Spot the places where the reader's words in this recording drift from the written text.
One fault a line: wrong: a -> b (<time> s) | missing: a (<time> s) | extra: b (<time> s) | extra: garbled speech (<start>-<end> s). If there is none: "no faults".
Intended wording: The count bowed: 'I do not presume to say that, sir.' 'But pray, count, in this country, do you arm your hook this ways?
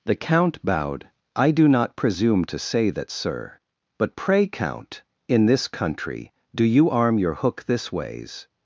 no faults